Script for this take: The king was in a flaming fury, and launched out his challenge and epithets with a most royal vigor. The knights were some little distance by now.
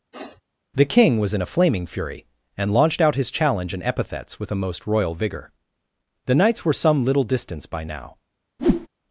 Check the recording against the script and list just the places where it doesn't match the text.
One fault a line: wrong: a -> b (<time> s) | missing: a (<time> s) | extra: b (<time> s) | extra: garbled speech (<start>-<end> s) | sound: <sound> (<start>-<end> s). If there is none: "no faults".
sound: sniff (0.1-0.4 s)
sound: whoosh (8.6-8.9 s)